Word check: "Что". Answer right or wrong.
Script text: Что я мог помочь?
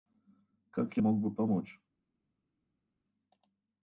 wrong